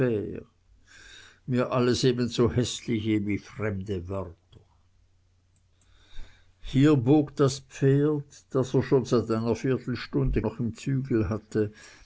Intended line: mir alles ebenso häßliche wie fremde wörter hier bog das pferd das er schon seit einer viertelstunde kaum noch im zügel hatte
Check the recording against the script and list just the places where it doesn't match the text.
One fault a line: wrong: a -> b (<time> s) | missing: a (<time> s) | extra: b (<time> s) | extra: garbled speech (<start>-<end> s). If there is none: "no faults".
missing: kaum (10.4 s)